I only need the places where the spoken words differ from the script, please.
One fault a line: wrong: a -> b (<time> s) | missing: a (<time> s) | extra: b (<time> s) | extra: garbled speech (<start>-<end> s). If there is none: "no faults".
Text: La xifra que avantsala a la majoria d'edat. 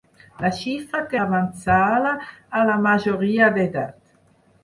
no faults